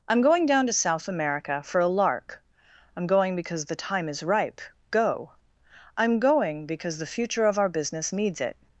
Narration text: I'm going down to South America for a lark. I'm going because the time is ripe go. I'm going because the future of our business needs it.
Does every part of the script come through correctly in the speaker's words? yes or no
yes